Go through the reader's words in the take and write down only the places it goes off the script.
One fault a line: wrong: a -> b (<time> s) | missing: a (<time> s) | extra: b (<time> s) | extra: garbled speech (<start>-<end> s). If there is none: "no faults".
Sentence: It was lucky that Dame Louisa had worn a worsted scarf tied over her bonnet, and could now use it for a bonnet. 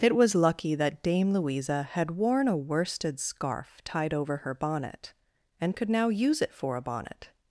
no faults